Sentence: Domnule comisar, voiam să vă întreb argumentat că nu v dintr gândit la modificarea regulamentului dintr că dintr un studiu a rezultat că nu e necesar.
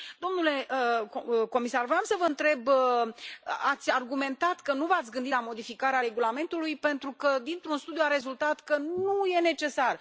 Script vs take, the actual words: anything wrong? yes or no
yes